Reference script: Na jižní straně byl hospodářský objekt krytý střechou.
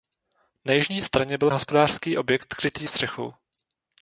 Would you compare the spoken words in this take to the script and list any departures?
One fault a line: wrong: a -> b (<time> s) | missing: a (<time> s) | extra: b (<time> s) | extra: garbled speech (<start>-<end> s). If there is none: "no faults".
no faults